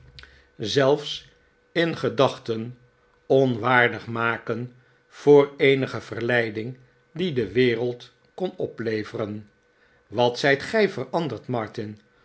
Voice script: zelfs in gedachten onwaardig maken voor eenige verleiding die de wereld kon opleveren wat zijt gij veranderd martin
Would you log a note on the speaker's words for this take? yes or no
no